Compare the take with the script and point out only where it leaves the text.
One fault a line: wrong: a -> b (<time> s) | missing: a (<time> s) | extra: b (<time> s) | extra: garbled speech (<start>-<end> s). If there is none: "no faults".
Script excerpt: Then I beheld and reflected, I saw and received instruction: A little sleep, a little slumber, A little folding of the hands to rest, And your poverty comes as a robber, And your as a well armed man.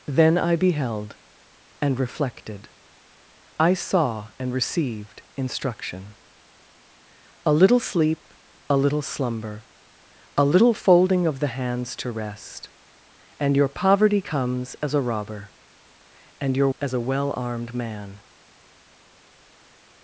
no faults